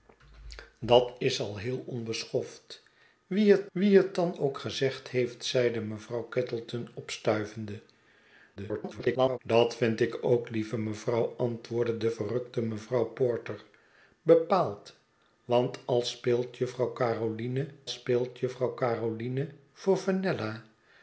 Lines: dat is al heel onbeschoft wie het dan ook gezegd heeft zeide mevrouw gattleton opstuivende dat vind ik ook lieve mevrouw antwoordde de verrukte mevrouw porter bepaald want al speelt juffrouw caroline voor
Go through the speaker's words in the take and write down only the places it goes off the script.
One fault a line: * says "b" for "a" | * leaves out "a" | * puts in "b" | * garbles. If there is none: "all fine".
* puts in "wie het"
* garbles
* puts in "speelt juffrouw caroline"